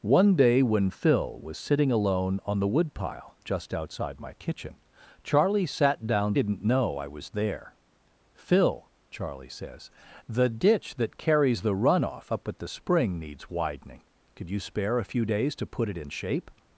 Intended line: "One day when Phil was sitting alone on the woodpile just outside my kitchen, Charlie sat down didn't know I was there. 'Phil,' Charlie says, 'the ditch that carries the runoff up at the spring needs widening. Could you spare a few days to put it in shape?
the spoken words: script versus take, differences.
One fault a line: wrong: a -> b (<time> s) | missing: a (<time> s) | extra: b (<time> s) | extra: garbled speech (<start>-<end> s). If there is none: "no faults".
no faults